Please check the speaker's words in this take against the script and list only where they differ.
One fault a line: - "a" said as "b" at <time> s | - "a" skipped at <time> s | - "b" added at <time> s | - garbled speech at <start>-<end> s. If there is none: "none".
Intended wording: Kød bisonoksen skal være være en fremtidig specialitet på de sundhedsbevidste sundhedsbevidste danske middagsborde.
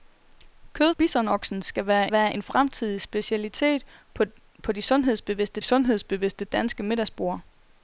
none